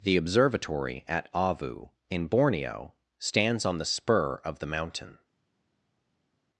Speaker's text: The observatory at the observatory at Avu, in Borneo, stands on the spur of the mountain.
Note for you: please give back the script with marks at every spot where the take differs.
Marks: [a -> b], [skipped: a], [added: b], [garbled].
The observatory at [skipped: the observatory at] Avu, in Borneo, stands on the spur of the mountain.